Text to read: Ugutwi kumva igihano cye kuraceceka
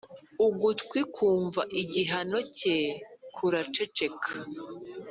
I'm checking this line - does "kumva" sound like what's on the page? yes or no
yes